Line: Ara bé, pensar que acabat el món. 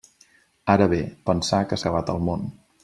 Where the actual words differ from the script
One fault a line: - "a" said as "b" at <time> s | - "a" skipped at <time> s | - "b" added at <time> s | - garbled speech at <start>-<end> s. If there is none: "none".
none